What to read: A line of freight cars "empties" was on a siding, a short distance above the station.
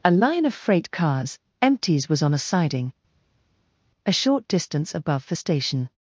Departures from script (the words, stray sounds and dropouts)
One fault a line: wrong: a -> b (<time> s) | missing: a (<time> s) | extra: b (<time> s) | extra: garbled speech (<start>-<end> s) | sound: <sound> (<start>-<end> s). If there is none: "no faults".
no faults